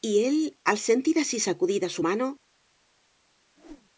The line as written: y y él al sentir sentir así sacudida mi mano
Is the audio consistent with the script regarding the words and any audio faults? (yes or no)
no